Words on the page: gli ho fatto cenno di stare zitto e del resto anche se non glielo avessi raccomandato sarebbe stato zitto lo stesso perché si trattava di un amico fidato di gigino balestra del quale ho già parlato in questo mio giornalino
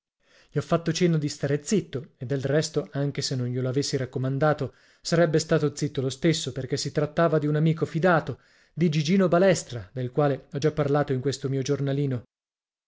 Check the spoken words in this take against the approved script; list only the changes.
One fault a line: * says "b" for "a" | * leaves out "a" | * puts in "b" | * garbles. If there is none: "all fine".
all fine